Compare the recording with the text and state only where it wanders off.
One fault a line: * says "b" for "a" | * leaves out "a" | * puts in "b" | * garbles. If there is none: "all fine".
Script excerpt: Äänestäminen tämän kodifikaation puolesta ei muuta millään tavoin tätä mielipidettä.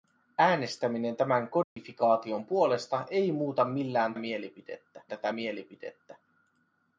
* says "mielipidettä" for "tavoin"